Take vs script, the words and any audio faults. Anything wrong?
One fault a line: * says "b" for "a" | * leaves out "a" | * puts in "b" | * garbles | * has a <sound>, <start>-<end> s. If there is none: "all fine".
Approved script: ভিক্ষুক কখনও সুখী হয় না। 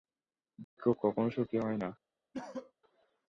* has a dropout, 0.6-0.8 s
* has a cough, 2.3-2.7 s